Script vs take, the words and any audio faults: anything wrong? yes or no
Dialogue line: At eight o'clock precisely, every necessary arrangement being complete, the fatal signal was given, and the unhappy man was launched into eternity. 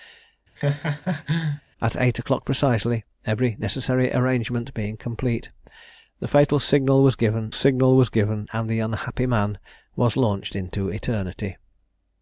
yes